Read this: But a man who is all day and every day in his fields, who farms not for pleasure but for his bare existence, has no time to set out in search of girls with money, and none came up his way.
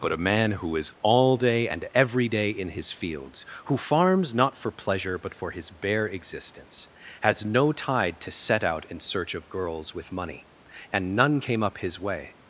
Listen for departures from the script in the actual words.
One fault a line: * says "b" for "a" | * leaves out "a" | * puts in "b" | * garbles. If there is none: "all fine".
* says "tide" for "time"